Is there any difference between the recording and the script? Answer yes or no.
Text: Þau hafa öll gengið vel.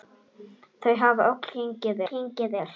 yes